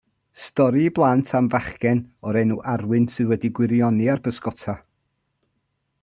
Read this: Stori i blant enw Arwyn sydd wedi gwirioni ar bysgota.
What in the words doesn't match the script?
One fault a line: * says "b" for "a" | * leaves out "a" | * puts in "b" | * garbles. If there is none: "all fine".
* puts in "am fachgen o'r"